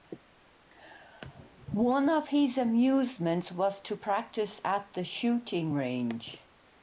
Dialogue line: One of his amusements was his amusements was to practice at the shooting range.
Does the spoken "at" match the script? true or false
true